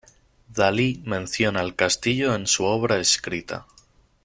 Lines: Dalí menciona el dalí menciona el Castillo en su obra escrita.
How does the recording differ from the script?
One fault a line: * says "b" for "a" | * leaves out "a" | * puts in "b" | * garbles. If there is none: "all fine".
* leaves out "dalí menciona el"